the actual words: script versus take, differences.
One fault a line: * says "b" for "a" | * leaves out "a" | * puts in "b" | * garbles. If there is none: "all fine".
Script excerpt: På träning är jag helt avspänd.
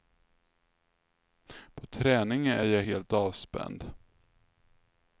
all fine